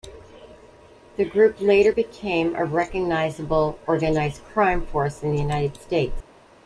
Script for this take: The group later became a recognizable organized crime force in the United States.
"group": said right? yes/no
yes